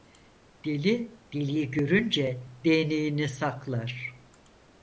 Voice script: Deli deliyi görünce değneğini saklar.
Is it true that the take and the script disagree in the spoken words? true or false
false